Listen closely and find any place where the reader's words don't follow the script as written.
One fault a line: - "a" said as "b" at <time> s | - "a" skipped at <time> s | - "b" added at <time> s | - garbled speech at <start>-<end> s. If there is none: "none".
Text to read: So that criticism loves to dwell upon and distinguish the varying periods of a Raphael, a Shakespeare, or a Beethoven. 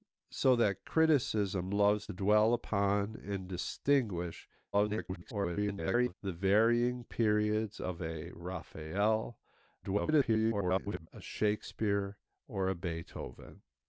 - "to" skipped at 2.1 s
- garbled speech at 4.7-6.1 s
- garbled speech at 9.8-11.1 s